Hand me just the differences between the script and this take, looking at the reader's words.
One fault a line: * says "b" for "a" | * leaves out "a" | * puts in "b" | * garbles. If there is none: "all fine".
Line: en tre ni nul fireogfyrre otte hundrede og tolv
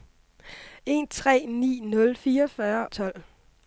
* leaves out "otte hundrede"